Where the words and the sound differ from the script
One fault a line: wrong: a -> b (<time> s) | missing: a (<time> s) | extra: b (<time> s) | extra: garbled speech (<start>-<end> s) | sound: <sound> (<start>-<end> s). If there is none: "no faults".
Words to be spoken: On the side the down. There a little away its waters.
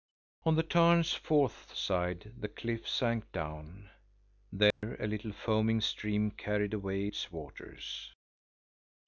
extra: tarn's fourth (0.6 s)
extra: cliff sank (2.5 s)
sound: dropout (4.7-4.8 s)
extra: foaming stream carried (5.3 s)